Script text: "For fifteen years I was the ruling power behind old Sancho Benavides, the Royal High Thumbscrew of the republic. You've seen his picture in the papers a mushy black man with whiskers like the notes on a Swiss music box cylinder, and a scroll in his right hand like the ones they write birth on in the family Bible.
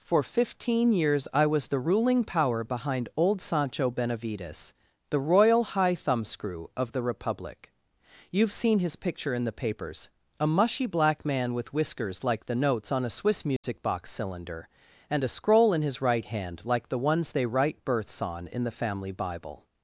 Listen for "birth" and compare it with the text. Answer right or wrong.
wrong